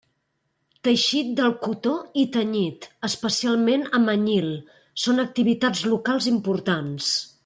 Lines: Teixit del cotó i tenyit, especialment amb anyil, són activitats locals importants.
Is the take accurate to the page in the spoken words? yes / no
yes